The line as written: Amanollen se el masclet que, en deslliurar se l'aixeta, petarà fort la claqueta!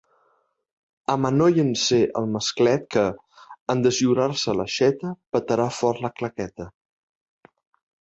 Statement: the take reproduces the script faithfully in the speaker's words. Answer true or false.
true